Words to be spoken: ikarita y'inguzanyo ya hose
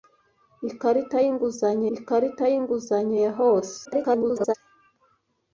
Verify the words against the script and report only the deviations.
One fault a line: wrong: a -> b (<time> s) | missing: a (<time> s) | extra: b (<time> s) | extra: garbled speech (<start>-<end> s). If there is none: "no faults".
extra: ikarita y'inguzanyo (2.0 s)
extra: garbled speech (3.8-4.5 s)